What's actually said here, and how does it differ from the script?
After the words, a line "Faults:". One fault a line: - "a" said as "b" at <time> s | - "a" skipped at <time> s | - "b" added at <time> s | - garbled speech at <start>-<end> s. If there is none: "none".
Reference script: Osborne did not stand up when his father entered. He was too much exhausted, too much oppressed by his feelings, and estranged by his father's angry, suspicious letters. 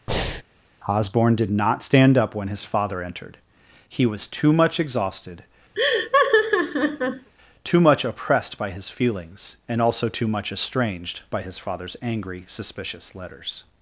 Osborne did not stand up when his father entered. He was too much exhausted, too much oppressed by his feelings, and also too much estranged by his father's angry, suspicious letters.
Faults:
- "also too much" added at 9.8 s